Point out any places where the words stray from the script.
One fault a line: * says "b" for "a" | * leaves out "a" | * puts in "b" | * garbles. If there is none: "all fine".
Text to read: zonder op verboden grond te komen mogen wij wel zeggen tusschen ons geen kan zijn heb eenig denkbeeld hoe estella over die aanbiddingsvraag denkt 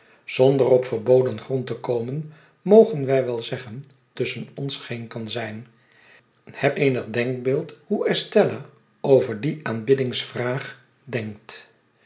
all fine